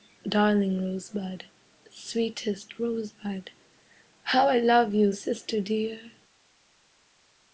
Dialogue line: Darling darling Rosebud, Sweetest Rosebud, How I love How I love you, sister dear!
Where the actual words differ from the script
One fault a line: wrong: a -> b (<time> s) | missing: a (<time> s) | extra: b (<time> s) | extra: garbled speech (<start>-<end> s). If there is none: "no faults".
missing: darling (0.8 s)
missing: How I love (4.9 s)